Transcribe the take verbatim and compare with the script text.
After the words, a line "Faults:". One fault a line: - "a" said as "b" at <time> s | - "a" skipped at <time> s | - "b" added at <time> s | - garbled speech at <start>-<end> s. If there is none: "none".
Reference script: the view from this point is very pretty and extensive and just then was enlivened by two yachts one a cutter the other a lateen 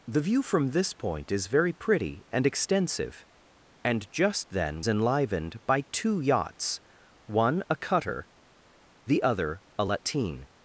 the view from this point is very pretty and extensive and just then enlivened by two yachts one a cutter the other a lateen
Faults:
- "was" skipped at 4.8 s